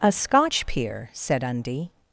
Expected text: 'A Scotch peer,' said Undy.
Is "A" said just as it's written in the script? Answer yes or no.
yes